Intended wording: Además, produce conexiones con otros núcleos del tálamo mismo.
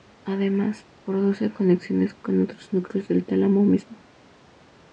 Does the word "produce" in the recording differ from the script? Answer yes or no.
no